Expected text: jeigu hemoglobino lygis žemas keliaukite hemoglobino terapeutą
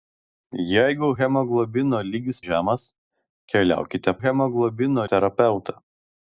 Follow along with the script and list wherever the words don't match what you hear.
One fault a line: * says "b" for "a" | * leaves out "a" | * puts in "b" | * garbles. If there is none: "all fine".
all fine